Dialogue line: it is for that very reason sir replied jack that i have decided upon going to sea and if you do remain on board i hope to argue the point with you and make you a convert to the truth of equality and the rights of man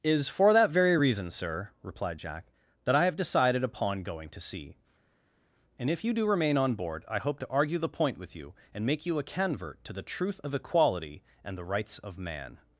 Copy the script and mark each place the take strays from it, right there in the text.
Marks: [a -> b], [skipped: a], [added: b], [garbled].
[skipped: it] is for that very reason sir replied jack that i have decided upon going to sea and if you do remain on board i hope to argue the point with you and make you a convert to the truth of equality and the rights of man